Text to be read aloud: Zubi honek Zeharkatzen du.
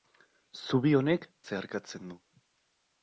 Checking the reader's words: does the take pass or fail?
pass